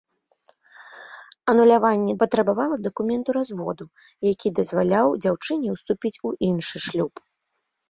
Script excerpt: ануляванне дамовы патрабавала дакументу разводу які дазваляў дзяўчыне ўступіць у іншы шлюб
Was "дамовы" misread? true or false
true